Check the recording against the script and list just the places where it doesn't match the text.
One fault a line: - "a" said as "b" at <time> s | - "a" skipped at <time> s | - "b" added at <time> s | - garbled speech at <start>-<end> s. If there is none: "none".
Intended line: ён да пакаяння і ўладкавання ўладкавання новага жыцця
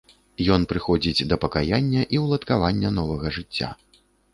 - "прыходзіць" added at 0.7 s
- "ўладкавання" skipped at 3.0 s